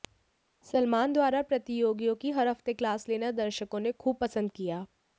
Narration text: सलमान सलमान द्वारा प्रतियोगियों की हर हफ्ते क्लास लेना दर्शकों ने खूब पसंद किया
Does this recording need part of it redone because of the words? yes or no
yes